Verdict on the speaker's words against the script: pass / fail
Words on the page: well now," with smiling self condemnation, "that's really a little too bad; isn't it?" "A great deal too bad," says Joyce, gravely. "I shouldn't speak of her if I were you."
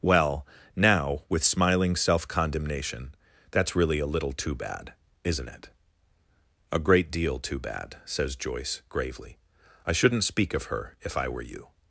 pass